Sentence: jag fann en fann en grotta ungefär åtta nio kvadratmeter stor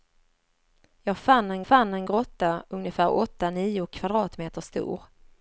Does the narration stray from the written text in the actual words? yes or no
no